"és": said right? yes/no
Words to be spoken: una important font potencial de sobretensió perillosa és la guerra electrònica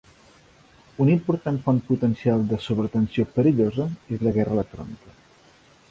yes